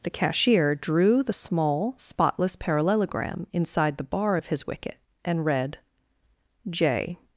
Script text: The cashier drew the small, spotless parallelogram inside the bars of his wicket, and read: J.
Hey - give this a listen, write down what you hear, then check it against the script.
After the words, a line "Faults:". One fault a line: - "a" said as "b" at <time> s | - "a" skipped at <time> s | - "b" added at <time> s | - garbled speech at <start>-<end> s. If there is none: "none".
The cashier drew the small, spotless parallelogram inside the bar of his wicket, and read: J.
Faults:
- "bars" said as "bar" at 4.0 s